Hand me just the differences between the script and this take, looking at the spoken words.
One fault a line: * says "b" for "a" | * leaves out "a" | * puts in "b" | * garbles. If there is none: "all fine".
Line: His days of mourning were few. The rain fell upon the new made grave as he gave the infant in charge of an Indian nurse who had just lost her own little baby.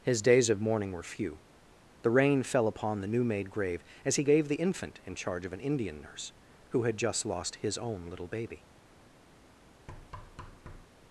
* says "his" for "her"